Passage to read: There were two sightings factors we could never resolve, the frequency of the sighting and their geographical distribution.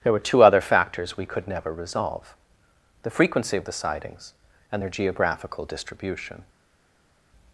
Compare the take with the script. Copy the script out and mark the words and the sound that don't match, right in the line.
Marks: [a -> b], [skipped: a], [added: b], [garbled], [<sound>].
There were two [sightings -> other] factors we could never resolve, the frequency of the [sighting -> sightings] and their geographical distribution.